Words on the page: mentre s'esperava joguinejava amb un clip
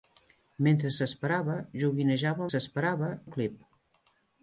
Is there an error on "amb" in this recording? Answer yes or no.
yes